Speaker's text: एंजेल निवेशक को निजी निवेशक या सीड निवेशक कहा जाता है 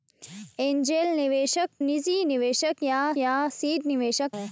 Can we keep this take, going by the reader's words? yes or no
no